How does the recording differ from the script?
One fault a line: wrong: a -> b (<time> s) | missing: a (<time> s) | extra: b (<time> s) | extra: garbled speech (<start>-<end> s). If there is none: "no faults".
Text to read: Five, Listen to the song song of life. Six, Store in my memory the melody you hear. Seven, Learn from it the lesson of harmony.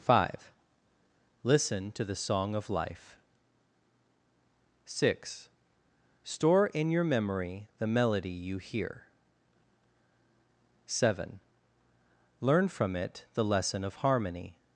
missing: song (2.5 s)
wrong: my -> your (6.9 s)